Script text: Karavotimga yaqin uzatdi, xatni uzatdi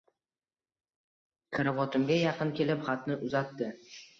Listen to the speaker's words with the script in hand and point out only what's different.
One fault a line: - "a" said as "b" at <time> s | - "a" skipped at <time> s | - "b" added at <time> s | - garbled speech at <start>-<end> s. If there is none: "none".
- "uzatdi" said as "kelib" at 2.6 s